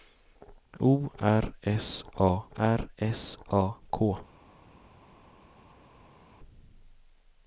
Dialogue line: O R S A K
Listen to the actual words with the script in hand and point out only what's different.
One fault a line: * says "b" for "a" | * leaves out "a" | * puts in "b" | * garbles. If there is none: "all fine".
* puts in "R S A"